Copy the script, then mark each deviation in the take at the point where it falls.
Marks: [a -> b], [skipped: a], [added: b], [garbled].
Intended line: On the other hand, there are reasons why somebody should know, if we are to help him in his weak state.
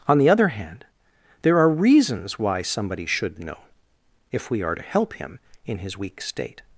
On the other hand, there are reasons why somebody should know, if we are to help him in his weak state.